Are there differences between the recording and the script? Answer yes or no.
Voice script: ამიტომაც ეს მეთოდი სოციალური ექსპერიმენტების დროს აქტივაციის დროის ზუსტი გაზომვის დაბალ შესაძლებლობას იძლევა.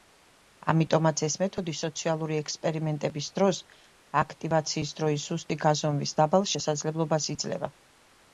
no